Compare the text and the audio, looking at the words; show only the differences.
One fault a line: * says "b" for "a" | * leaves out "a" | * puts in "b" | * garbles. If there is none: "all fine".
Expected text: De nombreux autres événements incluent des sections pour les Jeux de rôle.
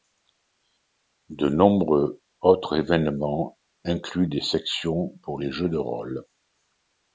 all fine